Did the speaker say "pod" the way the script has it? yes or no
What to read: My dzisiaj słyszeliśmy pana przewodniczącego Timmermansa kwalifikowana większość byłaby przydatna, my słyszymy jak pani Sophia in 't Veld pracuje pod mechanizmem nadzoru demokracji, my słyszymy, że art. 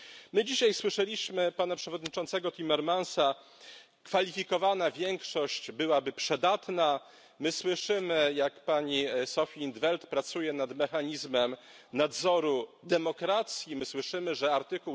no